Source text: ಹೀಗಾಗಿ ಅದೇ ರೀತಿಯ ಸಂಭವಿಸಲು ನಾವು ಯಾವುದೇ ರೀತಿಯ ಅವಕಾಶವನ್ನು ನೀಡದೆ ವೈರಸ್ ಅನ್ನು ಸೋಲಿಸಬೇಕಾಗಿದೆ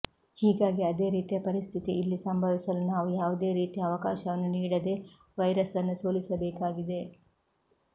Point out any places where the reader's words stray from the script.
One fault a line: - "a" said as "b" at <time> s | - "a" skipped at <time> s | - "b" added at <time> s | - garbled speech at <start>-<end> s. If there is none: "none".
- "ಪರಿಸ್ಥಿತಿ ಇಲ್ಲಿ" added at 1.4 s